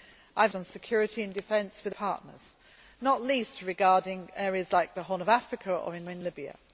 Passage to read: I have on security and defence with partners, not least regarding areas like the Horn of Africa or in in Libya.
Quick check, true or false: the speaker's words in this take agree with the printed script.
true